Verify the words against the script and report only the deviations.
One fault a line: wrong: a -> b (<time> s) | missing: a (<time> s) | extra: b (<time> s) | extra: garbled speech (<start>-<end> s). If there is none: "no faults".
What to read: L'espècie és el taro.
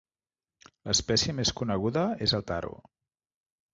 extra: més coneguda (1.4 s)